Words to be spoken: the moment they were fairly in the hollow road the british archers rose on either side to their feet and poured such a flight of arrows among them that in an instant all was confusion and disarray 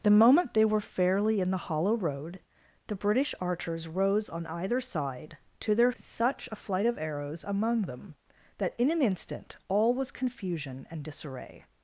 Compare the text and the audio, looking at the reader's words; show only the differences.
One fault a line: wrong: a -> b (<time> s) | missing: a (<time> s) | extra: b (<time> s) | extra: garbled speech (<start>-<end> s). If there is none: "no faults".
missing: feet and poured (5.9 s)